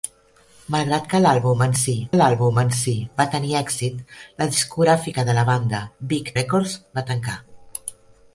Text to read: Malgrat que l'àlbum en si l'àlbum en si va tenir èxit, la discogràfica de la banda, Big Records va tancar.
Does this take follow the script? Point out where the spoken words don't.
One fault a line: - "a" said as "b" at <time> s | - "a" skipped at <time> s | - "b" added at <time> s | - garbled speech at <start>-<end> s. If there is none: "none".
none